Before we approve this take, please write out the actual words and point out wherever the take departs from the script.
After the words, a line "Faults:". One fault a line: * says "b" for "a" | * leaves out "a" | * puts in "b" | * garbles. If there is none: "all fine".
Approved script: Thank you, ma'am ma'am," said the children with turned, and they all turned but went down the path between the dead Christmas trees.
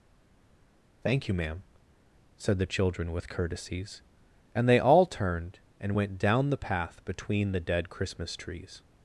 Thank you, ma'am," said the children with courtesies, and they all turned and went down the path between the dead Christmas trees.
Faults:
* leaves out "ma'am"
* says "courtesies" for "turned"
* says "and" for "but"